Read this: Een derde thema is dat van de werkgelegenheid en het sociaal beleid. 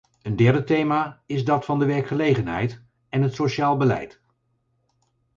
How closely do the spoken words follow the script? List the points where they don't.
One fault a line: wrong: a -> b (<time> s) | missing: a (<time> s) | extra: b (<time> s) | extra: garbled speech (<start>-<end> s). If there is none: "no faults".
no faults